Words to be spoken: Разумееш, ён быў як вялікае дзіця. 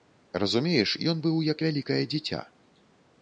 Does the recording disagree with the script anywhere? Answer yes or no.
no